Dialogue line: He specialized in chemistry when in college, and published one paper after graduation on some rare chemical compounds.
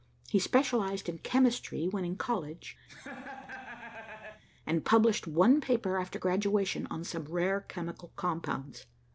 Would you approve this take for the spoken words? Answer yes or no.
yes